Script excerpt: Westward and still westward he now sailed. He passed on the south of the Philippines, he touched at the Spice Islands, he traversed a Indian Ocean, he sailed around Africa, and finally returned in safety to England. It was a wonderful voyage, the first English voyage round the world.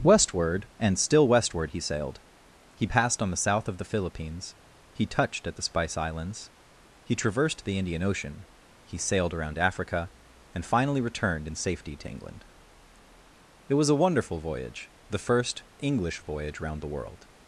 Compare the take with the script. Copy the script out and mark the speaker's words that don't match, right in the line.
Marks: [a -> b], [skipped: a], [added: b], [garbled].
Westward and still westward he [skipped: now] sailed. He passed on the south of the Philippines, he touched at the Spice Islands, he traversed [a -> the] Indian Ocean, he sailed around Africa, and finally returned in safety to England. It was a wonderful voyage, the first English voyage round the world.